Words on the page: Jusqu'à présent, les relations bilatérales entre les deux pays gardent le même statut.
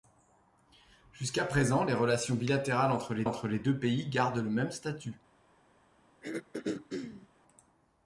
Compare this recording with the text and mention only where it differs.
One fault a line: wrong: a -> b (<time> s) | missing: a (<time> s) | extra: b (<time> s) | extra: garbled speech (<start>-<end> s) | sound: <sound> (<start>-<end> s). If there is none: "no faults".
extra: entre les (3.2 s)
sound: throat clearing (6.2-7.3 s)